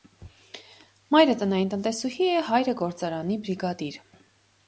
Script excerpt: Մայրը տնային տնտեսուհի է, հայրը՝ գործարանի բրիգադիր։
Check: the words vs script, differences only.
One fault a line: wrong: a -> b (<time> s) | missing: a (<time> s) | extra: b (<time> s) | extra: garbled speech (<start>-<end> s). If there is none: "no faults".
no faults